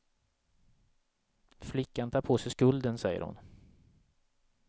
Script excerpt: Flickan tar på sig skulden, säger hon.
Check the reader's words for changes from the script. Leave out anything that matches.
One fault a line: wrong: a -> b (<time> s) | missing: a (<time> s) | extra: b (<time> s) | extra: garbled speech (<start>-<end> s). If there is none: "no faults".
no faults